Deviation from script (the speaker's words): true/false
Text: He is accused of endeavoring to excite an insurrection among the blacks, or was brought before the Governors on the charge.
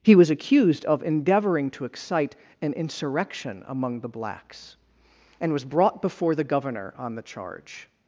true